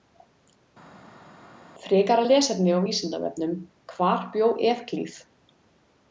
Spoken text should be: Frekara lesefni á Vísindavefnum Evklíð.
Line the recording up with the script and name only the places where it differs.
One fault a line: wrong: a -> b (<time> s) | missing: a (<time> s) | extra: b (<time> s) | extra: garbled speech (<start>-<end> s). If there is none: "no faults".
extra: Hvar bjó (4.0 s)